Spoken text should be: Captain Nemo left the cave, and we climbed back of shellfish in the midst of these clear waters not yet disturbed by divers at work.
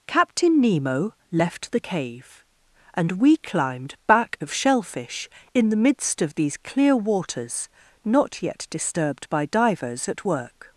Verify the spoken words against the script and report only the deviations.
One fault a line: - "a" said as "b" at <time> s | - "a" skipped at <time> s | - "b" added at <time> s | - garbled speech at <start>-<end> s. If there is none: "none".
none